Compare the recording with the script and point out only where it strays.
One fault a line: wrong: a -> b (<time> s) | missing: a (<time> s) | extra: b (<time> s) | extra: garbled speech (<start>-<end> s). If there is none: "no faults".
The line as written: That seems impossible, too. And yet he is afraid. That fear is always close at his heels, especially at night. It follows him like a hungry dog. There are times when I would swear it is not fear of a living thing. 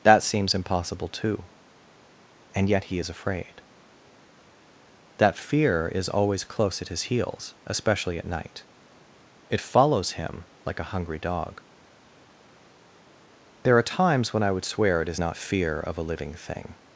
no faults